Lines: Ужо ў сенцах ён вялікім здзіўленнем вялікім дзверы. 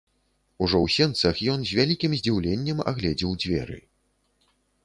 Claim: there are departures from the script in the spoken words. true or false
true